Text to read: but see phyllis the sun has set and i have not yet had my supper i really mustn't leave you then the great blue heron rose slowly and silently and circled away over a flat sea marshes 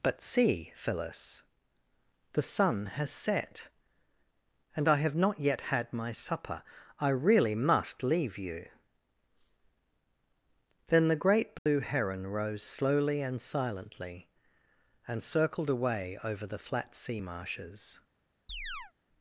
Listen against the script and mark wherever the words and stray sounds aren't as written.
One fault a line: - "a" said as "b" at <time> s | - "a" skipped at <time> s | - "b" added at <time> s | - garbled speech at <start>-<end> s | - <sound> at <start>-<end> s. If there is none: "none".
- "mustn't" said as "must" at 7.5 s
- dropout at 11.6-11.7 s
- "a" said as "the" at 16.5 s
- chirp at 18.5-18.9 s